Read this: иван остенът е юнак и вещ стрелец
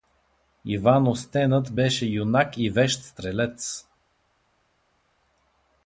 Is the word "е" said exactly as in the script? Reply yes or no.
no